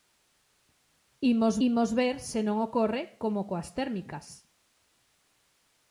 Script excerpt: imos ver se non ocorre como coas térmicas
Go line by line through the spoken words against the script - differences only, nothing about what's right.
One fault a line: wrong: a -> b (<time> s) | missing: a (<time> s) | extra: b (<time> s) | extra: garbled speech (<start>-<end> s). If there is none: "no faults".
extra: imos (1.7 s)